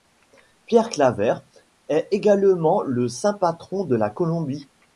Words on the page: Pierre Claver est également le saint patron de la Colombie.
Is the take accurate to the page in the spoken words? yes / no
yes